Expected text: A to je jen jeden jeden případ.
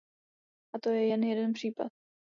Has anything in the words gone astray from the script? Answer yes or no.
yes